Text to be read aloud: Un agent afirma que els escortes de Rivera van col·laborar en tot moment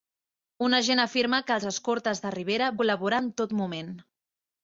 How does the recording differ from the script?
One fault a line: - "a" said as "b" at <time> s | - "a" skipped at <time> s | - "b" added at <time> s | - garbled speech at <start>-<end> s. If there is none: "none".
- "van" skipped at 2.7 s